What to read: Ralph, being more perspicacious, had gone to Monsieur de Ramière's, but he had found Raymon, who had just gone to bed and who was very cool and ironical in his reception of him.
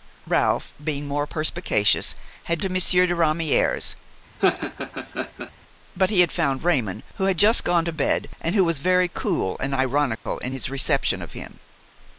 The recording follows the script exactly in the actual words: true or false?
false